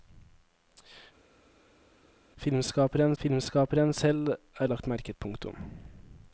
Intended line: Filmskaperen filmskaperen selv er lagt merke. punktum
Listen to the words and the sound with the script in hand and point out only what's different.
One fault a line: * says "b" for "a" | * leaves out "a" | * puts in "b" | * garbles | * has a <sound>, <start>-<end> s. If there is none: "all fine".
all fine